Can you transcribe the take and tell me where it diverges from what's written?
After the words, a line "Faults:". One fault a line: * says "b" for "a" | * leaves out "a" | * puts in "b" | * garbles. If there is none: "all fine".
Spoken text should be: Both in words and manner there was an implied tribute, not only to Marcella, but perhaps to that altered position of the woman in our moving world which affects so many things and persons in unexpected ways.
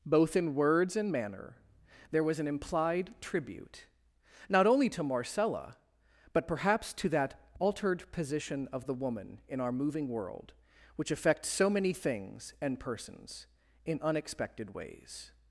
Both in words and manner there was an implied tribute, not only to Marcella, but perhaps to that altered position of the woman in our moving world which affects so many things and persons in unexpected ways.
Faults:
all fine